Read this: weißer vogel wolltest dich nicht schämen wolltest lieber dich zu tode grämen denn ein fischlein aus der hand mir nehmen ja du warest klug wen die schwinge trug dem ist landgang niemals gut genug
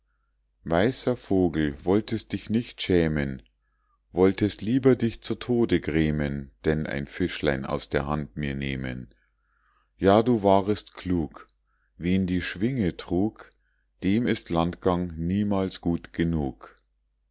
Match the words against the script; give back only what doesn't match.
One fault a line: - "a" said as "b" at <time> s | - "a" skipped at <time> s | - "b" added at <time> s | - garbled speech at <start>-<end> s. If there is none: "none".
none